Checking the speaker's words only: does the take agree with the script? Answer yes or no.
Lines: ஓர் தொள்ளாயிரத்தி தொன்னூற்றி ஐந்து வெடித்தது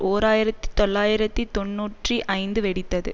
no